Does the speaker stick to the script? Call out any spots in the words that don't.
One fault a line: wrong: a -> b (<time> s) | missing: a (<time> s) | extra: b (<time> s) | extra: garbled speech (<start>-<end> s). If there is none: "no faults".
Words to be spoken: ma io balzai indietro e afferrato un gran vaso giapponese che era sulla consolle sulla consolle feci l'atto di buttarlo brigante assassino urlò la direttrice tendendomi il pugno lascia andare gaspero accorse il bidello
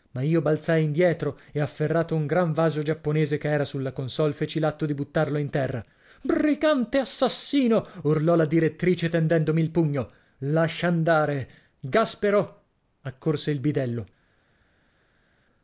missing: sulla consolle (4.3 s)
extra: in terra (5.4 s)